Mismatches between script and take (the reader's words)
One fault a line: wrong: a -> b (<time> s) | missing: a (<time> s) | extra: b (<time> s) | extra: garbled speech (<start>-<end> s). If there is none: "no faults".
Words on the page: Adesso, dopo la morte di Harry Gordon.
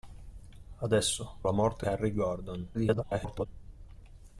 missing: dopo (1.4 s)
missing: di (1.9 s)
extra: garbled speech (2.7-3.5 s)